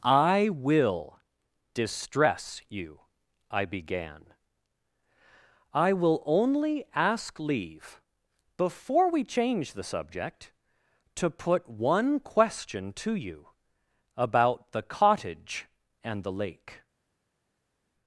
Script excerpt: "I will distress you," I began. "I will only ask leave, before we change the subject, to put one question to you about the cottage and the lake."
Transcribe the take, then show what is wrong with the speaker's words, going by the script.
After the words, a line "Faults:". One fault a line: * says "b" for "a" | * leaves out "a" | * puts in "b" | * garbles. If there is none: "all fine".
"I will distress you," I began. "I will only ask leave, before we change the subject, to put one question to you about the cottage and the lake."
Faults:
all fine